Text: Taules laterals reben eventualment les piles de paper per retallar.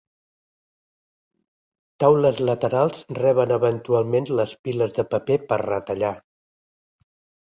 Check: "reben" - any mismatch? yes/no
no